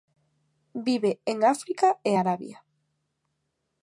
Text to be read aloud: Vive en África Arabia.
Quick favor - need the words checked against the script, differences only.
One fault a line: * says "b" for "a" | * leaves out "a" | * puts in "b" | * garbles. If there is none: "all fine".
* puts in "e"